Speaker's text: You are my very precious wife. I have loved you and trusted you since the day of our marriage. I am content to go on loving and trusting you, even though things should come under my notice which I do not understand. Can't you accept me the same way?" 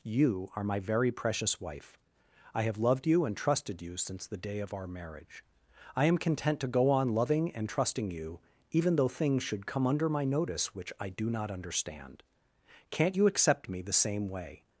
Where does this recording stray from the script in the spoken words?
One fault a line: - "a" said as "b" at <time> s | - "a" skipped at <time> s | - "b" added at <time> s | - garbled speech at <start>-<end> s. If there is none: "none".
none